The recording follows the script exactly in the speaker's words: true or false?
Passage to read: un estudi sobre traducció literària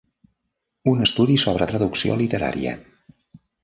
true